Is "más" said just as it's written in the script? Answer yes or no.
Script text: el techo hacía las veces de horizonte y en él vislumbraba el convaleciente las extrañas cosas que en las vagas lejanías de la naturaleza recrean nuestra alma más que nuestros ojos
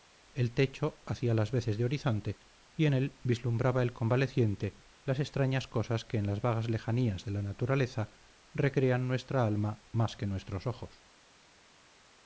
yes